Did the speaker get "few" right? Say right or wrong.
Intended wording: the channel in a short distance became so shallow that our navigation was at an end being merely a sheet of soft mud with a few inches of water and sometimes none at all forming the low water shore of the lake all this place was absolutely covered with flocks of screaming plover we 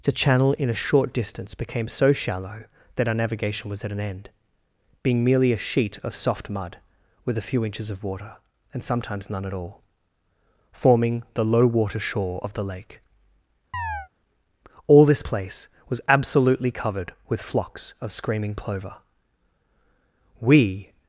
right